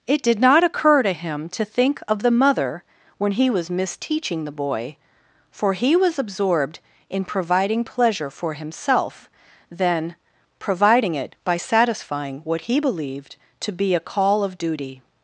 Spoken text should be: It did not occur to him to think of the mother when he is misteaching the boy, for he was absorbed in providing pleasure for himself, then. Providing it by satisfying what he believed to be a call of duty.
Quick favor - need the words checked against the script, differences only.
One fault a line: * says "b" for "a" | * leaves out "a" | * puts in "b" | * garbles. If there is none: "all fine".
* says "was" for "is"